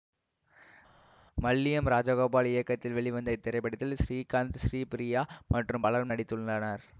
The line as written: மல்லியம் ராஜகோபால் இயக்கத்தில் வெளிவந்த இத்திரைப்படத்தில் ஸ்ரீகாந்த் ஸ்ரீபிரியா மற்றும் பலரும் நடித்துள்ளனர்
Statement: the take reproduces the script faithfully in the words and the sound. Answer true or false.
true